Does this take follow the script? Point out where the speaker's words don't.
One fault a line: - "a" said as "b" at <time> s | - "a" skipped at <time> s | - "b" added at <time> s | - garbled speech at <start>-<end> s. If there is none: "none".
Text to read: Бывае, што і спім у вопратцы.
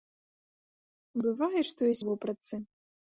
- "спім" skipped at 2.0 s